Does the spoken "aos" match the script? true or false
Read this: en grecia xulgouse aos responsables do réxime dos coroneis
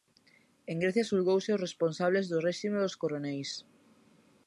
true